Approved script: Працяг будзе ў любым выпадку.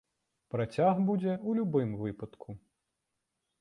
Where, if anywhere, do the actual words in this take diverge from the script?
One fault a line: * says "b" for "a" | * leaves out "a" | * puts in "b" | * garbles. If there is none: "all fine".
all fine